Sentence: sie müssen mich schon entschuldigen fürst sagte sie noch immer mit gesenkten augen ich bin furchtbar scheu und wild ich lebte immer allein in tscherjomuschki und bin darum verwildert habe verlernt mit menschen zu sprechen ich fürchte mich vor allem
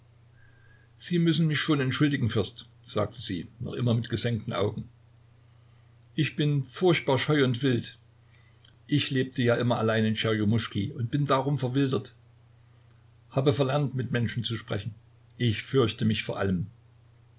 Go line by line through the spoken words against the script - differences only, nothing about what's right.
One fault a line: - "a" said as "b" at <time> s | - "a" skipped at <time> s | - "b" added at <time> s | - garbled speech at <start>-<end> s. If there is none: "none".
- "ja" added at 9.4 s